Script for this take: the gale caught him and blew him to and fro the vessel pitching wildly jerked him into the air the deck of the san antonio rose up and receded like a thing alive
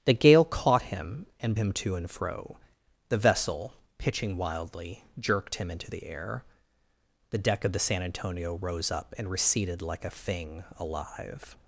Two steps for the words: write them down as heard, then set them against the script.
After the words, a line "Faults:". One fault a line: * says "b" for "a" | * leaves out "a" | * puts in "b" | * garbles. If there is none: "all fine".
the gale caught him and him to and fro the vessel pitching wildly jerked him into the air the deck of the san antonio rose up and receded like a thing alive
Faults:
* leaves out "blew"